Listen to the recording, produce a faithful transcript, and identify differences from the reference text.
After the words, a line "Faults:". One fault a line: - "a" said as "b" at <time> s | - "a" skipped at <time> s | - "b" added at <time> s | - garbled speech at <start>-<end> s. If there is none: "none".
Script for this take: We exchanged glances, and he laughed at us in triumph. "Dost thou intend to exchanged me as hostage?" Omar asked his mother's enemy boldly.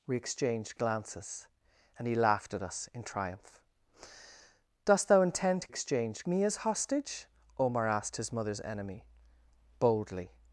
We exchanged glances, and he laughed at us in triumph. "Dost thou intend to exchanged me as hostage?" Omar asked his mother's enemy boldly.
Faults:
none